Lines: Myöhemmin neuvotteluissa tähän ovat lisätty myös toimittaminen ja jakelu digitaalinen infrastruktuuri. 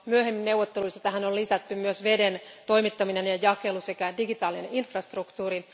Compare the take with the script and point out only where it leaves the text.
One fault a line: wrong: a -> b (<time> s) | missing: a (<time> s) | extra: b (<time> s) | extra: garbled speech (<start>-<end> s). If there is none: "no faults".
wrong: ovat -> on (1.2 s)
extra: veden (2.0 s)
extra: sekä (3.8 s)